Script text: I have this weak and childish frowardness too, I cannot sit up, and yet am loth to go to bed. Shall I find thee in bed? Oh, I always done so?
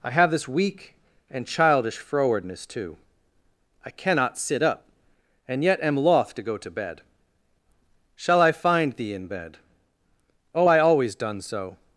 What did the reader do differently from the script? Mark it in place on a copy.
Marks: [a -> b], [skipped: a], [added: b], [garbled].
I have this weak and childish frowardness too, I cannot sit up, and yet am loth to go to bed. Shall I find thee in bed? Oh, I always done so?